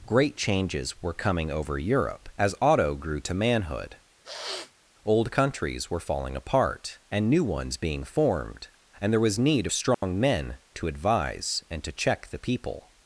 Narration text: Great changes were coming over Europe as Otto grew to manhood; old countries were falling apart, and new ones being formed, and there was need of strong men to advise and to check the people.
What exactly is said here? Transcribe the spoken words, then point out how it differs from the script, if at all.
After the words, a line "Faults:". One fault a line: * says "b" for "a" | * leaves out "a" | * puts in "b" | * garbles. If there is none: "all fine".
Great changes were coming over Europe as Otto grew to manhood; old countries were falling apart, and new ones being formed, and there was need of strong men to advise and to check the people.
Faults:
all fine